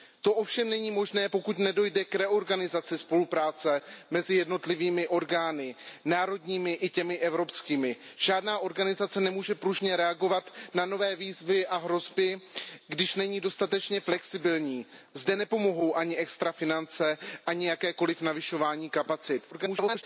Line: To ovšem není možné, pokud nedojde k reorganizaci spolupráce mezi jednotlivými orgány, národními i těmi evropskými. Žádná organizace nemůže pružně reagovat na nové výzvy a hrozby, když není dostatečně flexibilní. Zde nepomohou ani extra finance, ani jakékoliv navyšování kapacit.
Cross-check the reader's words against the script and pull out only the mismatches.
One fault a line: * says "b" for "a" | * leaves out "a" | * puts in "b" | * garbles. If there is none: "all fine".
* garbles